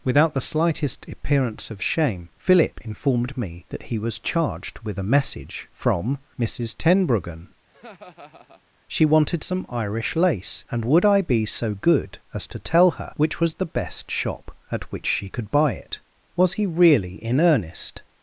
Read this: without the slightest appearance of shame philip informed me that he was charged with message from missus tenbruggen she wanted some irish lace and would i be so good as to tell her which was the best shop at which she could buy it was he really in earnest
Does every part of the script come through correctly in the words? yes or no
no